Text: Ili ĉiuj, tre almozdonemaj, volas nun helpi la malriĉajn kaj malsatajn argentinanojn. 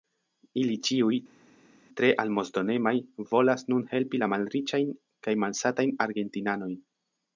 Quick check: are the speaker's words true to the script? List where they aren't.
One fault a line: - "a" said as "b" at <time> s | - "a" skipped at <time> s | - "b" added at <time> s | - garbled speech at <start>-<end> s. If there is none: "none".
none